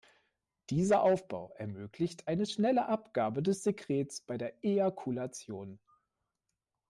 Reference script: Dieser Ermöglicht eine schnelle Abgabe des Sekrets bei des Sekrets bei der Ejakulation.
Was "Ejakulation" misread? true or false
false